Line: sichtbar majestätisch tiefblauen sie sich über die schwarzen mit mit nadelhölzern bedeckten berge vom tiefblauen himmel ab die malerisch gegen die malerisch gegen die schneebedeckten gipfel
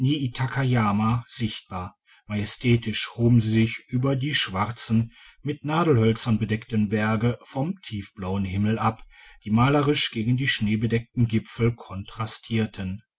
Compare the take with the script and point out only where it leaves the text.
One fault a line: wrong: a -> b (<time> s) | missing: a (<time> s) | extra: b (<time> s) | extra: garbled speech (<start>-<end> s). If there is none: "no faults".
wrong: tiefblauen -> hoben (3.2 s)
missing: mit (5.6 s)
missing: malerisch gegen die (10.5 s)